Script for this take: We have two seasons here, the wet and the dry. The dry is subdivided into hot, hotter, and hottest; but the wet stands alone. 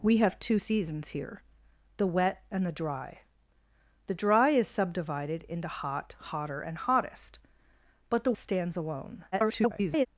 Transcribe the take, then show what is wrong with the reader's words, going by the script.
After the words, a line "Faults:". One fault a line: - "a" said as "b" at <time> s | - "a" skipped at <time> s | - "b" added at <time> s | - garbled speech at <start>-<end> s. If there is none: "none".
We have two seasons here, the wet and the dry. The dry is subdivided into hot, hotter, and hottest; but the stands alone. [garbled]
Faults:
- "wet" skipped at 8.3 s
- garbled speech at 9.3-10.1 s